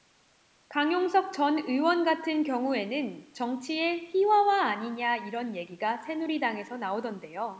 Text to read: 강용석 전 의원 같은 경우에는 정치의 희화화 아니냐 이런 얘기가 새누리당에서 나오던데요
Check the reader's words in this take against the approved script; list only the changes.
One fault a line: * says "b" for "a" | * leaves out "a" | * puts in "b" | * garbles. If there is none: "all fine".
all fine